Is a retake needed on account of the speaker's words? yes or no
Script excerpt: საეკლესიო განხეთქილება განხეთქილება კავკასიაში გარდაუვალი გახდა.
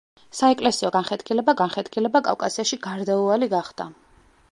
no